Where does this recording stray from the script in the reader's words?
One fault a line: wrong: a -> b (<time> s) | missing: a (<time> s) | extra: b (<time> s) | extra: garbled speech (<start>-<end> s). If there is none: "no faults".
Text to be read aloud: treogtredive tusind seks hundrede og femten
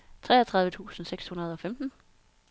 no faults